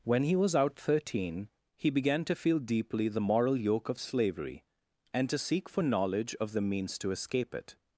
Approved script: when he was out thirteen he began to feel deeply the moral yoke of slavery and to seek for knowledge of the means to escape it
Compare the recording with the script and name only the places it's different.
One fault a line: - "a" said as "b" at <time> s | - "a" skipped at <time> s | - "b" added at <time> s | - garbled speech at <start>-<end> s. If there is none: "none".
none